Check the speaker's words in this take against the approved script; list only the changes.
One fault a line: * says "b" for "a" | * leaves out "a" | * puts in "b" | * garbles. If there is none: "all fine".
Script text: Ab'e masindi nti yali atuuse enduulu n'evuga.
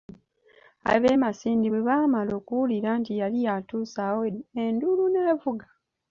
* puts in "bwe baamala okuwulira"
* puts in "awo"